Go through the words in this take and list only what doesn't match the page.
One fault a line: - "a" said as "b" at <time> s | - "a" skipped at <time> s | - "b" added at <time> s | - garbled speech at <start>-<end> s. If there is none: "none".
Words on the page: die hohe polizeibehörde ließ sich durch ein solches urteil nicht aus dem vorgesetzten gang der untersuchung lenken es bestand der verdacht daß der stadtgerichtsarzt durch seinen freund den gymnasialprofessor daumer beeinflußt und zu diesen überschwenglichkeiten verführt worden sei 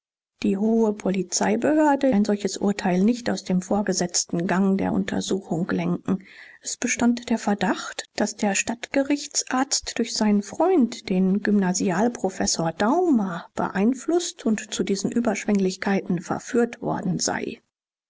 - "ließ sich durch" skipped at 2.1 s